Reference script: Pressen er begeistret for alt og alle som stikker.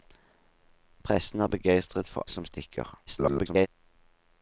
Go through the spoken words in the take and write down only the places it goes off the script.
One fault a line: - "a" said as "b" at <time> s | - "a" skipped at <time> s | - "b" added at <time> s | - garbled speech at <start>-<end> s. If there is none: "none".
- "alt og alle" skipped at 2.3 s
- garbled speech at 3.1-3.7 s